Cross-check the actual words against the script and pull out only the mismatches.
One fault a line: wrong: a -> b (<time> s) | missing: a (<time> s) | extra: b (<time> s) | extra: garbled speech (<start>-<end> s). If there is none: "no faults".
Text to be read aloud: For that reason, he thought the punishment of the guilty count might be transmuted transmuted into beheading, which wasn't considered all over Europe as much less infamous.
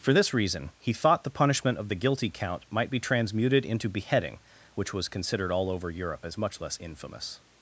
wrong: that -> this (0.1 s)
missing: transmuted (3.7 s)
wrong: wasn't -> was (4.9 s)